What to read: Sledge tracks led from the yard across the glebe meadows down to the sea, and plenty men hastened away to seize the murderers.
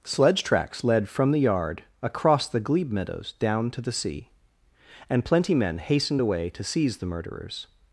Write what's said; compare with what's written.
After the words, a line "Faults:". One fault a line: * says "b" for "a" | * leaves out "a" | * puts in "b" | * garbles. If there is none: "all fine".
Sledge tracks led from the yard across the glebe meadows down to the sea, and plenty men hastened away to seize the murderers.
Faults:
all fine